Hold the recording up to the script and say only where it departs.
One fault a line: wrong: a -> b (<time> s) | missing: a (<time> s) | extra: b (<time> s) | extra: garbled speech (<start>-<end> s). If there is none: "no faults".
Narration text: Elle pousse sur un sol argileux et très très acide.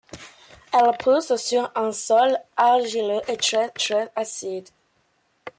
no faults